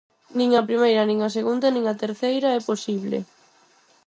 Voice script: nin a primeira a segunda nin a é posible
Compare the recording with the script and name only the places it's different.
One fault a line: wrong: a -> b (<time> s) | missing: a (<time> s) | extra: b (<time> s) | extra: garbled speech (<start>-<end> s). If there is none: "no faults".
extra: nin (1.1 s)
extra: terceira (2.0 s)